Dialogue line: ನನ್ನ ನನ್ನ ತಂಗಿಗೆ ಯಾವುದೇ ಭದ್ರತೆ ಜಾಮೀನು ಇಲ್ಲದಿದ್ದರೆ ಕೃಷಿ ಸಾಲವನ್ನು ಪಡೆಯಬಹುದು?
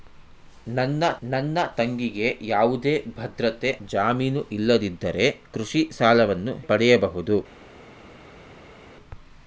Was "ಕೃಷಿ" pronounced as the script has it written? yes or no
yes